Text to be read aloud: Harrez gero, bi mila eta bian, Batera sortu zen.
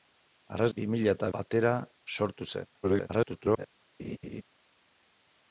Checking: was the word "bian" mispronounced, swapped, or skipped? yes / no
yes